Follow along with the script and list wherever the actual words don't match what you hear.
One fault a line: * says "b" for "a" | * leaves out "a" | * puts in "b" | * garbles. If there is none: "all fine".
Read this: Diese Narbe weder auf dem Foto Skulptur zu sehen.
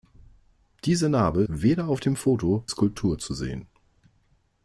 all fine